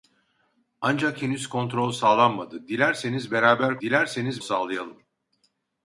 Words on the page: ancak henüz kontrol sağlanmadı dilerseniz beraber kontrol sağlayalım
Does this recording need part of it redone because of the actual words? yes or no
yes